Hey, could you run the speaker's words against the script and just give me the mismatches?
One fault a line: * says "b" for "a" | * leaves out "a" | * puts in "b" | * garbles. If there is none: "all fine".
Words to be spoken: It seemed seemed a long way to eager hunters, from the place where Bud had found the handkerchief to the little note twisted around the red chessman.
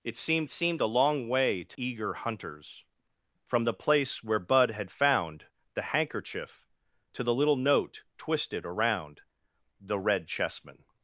all fine